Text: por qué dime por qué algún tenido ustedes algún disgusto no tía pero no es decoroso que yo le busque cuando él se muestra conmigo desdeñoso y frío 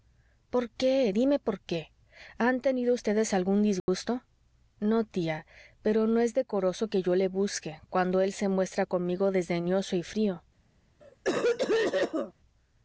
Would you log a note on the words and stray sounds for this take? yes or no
yes